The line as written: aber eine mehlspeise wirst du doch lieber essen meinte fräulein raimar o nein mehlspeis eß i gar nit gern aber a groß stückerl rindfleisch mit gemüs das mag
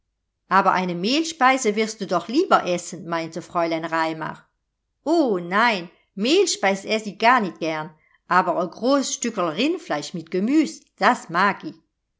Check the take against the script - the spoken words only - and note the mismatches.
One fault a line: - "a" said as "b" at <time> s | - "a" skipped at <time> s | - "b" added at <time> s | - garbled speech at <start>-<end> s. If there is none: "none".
none